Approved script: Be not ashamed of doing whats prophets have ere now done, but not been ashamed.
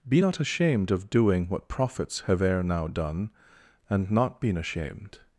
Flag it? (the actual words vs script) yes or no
yes